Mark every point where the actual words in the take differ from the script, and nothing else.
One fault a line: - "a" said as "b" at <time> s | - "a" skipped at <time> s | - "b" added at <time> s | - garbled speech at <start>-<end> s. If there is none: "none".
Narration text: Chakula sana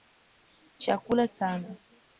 none